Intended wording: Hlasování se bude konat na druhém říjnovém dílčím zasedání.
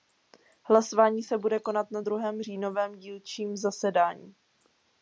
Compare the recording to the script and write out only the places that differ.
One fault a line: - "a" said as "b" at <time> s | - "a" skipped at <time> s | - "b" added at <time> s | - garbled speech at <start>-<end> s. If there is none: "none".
none